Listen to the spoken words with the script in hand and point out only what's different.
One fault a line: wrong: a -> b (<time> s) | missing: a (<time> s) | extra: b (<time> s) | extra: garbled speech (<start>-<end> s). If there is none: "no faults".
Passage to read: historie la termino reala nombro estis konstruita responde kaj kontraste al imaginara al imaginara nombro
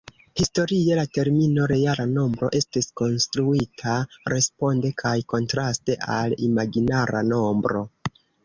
missing: al imaginara (7.3 s)